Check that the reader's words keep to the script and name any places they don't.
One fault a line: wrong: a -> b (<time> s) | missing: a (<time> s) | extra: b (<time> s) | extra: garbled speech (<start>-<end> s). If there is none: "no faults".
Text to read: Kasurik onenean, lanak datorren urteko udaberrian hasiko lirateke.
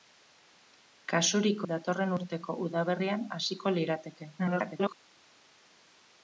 missing: onenean lanak (1.6 s)
extra: garbled speech (4.4-4.9 s)